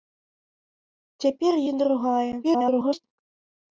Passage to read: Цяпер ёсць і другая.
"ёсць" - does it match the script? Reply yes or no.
no